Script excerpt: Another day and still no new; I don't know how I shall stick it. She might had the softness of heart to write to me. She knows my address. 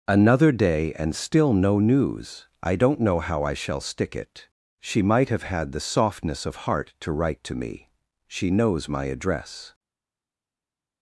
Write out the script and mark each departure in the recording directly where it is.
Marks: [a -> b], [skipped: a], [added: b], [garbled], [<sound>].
Another day and still no [new; -> news] I don't know how I shall stick it. She might [added: have] had the softness of heart to write to me. She knows my address.